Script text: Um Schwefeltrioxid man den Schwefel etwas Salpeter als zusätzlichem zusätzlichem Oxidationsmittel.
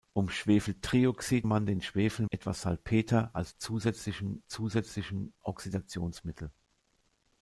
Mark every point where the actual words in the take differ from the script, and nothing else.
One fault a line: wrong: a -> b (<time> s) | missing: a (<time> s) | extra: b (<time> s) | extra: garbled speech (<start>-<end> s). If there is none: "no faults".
no faults